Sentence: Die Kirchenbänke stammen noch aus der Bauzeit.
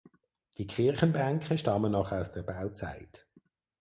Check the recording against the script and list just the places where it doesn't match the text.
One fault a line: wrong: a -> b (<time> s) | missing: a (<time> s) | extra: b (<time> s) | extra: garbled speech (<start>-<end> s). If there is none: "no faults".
no faults